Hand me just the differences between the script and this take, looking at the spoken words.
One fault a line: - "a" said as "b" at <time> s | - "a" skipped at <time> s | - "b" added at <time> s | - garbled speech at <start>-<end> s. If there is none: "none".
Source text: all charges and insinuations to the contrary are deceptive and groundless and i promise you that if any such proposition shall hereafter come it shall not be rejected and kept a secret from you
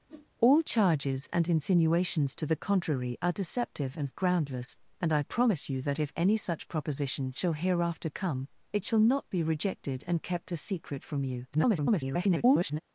- garbled speech at 11.5-12.8 s